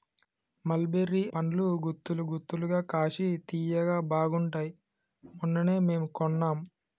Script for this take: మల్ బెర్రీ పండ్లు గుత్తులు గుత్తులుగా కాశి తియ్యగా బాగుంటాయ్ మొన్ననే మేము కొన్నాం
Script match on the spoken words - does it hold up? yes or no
yes